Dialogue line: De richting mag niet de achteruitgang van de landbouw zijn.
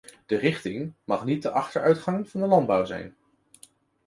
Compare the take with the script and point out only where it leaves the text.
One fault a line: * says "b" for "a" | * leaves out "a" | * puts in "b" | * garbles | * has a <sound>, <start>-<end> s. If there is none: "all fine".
all fine